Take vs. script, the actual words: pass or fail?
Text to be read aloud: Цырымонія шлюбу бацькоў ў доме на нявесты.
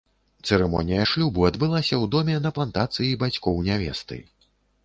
fail